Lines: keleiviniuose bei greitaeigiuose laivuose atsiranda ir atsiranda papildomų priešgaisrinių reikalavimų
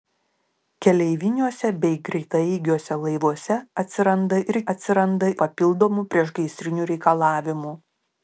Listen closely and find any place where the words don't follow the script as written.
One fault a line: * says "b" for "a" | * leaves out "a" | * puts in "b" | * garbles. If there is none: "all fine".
all fine